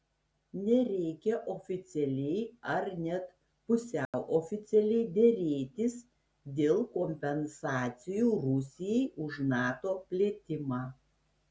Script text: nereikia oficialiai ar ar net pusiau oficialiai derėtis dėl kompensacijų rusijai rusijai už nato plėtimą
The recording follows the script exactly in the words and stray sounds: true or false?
false